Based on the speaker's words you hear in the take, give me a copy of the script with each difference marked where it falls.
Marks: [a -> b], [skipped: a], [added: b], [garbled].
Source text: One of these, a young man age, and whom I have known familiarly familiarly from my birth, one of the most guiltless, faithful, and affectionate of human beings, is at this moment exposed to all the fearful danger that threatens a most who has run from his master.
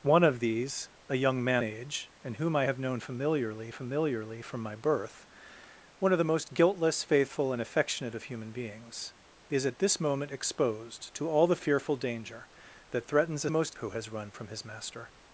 One of these, a young man age, and whom I have known familiarly familiarly from my birth, one of the most guiltless, faithful, and affectionate of human beings, is at this moment exposed to all the fearful danger that threatens a most who has run from his master.